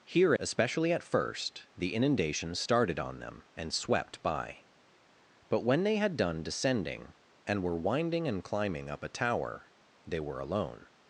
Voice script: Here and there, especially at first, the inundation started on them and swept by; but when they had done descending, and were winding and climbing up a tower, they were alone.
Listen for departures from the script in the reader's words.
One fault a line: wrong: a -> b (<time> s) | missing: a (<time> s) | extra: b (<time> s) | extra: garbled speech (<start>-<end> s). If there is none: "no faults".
missing: and there (0.3 s)